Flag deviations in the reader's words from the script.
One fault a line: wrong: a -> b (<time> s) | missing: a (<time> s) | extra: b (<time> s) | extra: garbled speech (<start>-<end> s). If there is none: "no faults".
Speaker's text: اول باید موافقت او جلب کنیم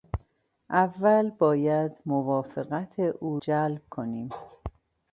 no faults